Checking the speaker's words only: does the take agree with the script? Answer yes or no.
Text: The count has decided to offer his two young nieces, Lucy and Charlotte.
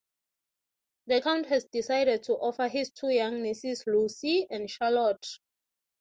yes